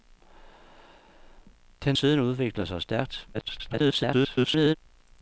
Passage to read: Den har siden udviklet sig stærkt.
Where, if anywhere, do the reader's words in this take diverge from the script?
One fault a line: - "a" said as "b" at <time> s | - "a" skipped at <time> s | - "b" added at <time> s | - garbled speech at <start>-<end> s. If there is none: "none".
- "har" skipped at 1.9 s
- garbled speech at 3.3-4.8 s